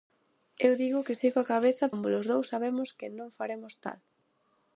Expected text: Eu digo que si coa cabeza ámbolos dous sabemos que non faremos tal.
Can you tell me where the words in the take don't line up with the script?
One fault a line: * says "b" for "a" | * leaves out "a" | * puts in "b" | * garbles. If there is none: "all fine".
all fine